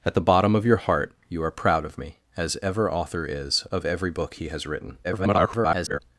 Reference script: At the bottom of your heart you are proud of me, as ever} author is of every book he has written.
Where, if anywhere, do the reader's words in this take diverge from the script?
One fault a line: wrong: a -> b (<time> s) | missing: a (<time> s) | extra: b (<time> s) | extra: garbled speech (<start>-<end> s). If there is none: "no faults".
extra: garbled speech (5.0-6.0 s)